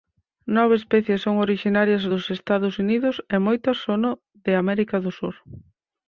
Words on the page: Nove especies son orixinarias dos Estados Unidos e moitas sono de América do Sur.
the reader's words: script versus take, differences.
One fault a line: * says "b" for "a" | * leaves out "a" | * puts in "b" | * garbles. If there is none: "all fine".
all fine